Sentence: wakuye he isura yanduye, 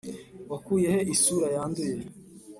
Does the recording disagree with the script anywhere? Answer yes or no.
no